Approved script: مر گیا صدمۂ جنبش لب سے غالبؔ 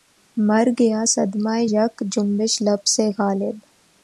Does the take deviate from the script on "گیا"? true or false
false